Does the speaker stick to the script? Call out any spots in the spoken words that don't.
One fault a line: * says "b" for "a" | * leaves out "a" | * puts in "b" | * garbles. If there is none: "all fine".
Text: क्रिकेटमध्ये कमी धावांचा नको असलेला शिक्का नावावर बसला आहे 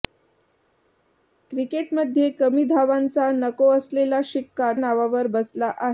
all fine